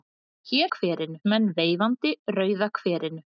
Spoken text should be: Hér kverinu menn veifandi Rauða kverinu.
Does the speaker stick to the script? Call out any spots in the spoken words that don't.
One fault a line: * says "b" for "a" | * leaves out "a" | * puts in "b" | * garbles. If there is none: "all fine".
all fine